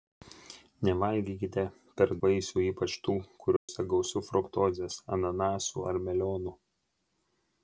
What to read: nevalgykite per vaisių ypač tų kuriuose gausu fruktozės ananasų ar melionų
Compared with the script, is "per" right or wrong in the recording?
right